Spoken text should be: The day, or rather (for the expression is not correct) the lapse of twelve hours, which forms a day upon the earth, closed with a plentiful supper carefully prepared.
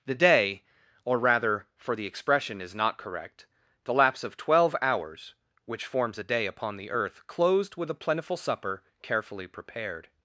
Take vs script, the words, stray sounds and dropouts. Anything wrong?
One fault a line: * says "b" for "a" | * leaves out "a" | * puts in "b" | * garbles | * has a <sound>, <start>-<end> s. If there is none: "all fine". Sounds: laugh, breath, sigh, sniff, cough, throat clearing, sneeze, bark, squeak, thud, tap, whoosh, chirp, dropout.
all fine